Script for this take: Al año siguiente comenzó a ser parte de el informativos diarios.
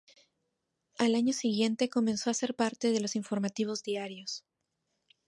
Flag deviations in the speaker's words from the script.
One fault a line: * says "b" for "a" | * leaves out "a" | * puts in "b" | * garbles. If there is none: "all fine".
* says "los" for "el"